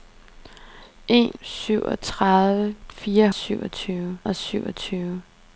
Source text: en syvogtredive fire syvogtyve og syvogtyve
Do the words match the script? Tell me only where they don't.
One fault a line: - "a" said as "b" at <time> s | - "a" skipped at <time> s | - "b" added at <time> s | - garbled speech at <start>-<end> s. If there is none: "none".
none